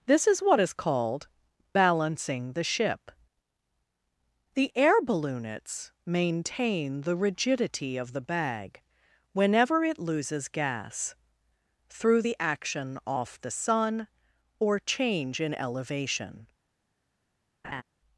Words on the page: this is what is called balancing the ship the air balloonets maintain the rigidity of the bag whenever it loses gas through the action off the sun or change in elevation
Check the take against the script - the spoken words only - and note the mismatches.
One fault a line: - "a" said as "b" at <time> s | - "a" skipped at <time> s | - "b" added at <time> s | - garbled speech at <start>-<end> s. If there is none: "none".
none